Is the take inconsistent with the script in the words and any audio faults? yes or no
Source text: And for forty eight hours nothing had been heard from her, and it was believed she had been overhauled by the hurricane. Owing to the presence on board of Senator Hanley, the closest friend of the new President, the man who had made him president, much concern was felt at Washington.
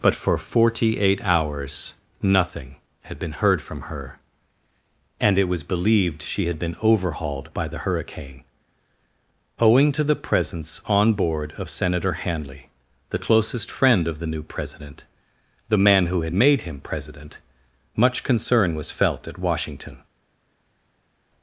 yes